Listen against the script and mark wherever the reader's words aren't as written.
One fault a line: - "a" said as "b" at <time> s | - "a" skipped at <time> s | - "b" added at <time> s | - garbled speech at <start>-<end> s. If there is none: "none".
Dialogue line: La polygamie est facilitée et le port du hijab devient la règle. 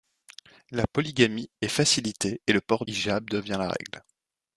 - "du" skipped at 2.9 s